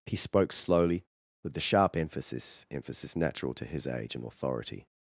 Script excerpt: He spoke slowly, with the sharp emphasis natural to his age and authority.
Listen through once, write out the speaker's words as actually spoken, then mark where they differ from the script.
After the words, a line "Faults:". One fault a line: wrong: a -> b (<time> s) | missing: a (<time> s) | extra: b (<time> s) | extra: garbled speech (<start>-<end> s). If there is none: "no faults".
He spoke slowly, with the sharp emphasis emphasis natural to his age and authority.
Faults:
extra: emphasis (2.7 s)